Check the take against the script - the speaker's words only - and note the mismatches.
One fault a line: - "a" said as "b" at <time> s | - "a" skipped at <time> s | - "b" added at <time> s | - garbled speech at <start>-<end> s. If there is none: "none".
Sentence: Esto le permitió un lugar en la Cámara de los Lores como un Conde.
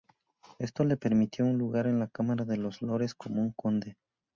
none